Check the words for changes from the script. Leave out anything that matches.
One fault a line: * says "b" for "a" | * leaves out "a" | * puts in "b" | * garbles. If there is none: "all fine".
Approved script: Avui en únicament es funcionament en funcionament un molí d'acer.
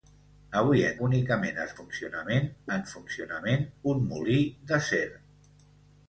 all fine